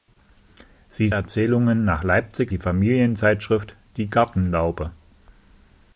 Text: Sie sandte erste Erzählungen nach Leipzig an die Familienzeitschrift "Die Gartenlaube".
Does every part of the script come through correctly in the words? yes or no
no